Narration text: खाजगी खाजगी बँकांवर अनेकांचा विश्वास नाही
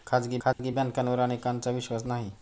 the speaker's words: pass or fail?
pass